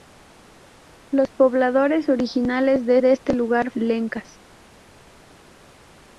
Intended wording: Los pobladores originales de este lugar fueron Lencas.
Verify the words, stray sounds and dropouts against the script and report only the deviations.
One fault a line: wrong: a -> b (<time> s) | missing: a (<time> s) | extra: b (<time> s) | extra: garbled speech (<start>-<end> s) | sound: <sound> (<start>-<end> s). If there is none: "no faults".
extra: de (3.0 s)
missing: fueron (3.7 s)